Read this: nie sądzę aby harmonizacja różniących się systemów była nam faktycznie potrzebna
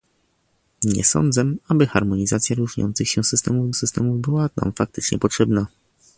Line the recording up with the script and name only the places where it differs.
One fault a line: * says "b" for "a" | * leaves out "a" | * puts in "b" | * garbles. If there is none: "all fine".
* puts in "systemów"